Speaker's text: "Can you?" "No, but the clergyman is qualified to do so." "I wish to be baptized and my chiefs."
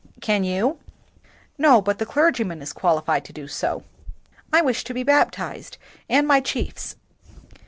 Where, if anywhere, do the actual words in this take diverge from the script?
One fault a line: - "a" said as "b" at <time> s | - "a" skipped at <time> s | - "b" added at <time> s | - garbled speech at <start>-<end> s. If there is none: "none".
none